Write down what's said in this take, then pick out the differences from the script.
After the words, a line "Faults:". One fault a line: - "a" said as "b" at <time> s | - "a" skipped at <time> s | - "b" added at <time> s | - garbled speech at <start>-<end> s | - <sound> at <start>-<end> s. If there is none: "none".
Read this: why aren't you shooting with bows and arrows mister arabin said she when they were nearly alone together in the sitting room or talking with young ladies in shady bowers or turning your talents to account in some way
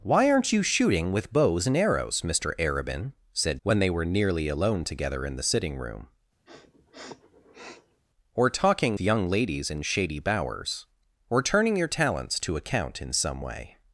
why aren't you shooting with bows and arrows mister arabin said when they were nearly alone together in the sitting room or talking young ladies in shady bowers or turning your talents to account in some way
Faults:
- "she" skipped at 3.6 s
- sniff at 6.5-8.0 s
- "with" skipped at 9.0 s